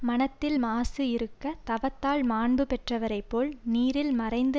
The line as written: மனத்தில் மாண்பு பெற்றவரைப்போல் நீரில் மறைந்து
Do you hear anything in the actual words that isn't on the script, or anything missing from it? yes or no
yes